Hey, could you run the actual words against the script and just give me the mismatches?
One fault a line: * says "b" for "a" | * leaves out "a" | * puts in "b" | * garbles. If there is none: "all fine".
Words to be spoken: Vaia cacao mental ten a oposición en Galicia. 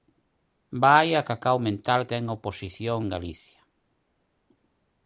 all fine